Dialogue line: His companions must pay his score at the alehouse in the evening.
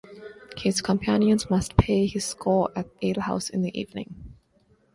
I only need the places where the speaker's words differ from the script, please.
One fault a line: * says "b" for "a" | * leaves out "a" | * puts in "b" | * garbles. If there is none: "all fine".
* leaves out "the"